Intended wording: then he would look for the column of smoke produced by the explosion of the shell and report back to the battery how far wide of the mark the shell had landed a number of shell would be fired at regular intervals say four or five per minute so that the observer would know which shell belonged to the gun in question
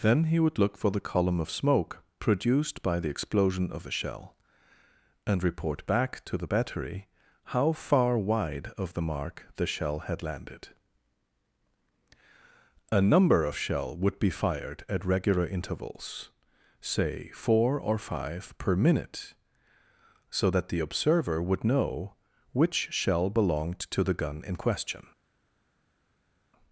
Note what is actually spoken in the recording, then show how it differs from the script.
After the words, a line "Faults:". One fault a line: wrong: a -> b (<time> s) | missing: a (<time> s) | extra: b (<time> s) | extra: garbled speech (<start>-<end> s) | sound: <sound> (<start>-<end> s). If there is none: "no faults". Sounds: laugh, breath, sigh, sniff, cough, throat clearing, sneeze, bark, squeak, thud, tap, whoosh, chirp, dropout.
then he would look for the column of smoke produced by the explosion of a shell and report back to the battery how far wide of the mark the shell had landed a number of shell would be fired at regular intervals say four or five per minute so that the observer would know which shell belonged to the gun in question
Faults:
wrong: the -> a (3.9 s)